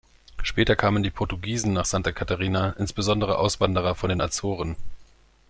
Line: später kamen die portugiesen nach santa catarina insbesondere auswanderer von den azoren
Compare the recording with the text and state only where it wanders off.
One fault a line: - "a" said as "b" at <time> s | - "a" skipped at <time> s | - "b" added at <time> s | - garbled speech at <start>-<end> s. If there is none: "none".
none